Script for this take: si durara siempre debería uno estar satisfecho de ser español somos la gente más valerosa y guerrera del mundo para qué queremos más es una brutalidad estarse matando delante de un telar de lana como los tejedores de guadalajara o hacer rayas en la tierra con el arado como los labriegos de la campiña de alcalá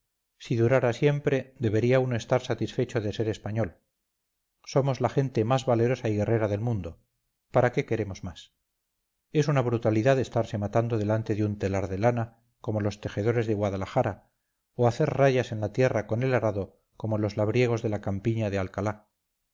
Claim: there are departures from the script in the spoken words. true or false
false